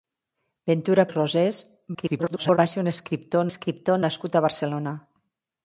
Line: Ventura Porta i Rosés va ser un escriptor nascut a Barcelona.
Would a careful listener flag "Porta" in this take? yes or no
yes